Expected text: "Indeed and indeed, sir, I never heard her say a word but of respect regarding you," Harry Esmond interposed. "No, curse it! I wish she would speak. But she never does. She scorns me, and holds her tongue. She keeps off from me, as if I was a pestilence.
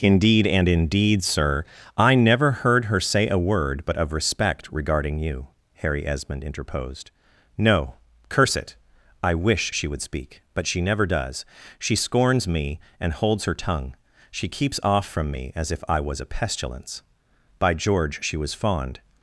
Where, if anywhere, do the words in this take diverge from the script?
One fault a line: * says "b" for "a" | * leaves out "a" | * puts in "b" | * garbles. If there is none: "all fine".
* puts in "By George she was fond"